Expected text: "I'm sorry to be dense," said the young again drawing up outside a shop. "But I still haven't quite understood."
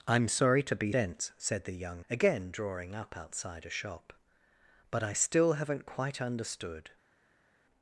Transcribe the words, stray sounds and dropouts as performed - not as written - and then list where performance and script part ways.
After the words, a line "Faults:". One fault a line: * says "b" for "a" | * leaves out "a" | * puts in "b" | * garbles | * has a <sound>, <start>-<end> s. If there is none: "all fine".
"I'm sorry to be dense," said the young again drawing up outside a shop. "But I still haven't quite understood."
Faults:
all fine